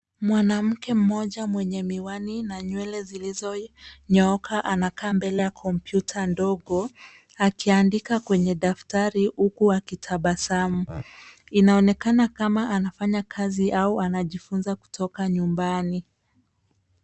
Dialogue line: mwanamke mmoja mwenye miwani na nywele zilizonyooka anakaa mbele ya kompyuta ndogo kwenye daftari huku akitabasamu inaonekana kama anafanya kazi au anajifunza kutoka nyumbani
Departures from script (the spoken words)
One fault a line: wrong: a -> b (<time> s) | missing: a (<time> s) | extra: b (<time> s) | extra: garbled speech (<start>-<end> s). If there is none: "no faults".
extra: akiandika (7.4 s)